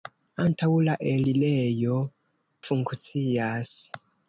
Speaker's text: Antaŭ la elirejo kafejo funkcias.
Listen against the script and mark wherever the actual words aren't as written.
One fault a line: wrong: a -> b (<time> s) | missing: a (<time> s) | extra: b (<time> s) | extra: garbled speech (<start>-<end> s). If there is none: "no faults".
missing: kafejo (2.0 s)